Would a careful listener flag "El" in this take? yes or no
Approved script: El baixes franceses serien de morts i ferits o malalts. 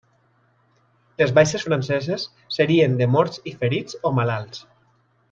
yes